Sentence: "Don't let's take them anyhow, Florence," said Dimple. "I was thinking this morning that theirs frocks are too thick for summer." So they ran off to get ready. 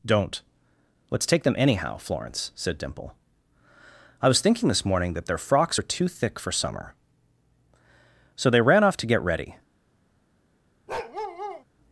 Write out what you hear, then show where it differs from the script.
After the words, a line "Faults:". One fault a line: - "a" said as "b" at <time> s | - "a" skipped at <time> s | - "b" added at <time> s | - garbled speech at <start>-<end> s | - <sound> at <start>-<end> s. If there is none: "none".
"Don't let's take them anyhow, Florence," said Dimple. "I was thinking this morning that their frocks are too thick for summer." So they ran off to get ready.
Faults:
- "theirs" said as "their" at 5.3 s
- bark at 10.9-11.6 s